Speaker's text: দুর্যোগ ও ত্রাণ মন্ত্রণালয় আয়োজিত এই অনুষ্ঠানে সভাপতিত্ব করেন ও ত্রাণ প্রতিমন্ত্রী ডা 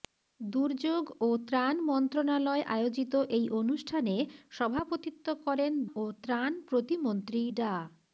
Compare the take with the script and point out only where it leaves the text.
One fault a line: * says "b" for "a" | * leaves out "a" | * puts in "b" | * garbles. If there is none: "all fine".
all fine